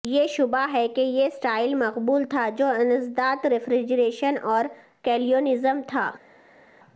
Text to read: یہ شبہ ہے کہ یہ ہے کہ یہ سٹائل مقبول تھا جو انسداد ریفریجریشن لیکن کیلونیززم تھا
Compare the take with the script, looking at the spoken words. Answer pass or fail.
fail